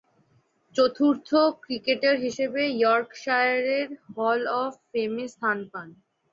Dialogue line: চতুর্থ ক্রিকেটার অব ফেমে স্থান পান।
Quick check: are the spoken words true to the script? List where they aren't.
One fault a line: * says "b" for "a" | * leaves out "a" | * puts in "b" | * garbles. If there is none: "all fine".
* puts in "হিসেবে ইয়র্কশায়ারের হল"